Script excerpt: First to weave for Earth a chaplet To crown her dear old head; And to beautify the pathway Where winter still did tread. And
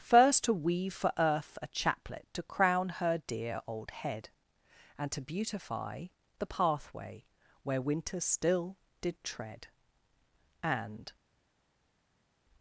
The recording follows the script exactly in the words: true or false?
true